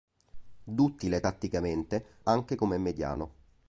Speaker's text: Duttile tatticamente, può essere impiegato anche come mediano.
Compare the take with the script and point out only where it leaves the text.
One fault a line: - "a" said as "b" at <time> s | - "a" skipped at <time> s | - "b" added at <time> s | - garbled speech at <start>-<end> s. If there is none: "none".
- "può essere impiegato" skipped at 2.1 s